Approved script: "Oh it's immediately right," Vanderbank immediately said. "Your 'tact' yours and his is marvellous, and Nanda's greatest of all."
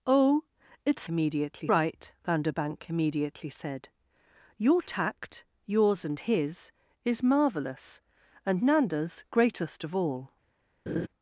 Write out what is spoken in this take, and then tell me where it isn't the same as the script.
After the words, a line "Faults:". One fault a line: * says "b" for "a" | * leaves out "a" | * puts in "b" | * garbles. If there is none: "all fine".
"Oh it's immediately right," Vanderbank immediately said. "Your 'tact' yours and his is marvellous, and Nanda's greatest of all."
Faults:
all fine